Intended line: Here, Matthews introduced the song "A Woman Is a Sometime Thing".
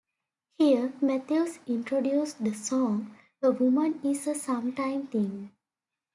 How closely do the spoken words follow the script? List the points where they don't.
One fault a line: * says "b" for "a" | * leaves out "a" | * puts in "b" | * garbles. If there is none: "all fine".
all fine